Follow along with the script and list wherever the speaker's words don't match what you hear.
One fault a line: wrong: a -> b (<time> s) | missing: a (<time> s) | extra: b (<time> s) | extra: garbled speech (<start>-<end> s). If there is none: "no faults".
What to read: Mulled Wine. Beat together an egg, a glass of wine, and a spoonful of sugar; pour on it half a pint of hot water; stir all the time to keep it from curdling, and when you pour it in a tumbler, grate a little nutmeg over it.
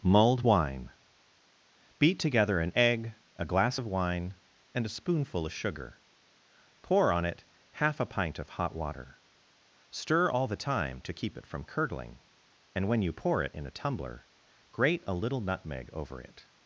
no faults